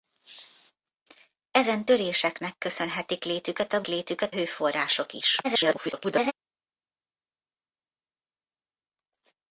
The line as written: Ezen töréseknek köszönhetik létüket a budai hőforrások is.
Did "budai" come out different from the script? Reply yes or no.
yes